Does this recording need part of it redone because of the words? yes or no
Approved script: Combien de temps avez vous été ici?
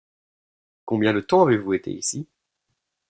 no